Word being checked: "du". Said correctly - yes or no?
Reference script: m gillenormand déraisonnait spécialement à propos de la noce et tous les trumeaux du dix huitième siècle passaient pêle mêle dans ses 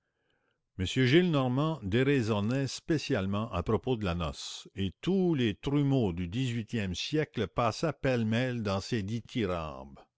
yes